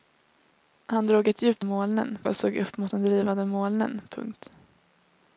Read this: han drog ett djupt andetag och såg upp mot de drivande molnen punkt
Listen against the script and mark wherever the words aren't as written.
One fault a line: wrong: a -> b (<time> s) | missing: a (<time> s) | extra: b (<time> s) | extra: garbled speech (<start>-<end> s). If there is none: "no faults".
wrong: andetag -> molnen (1.6 s)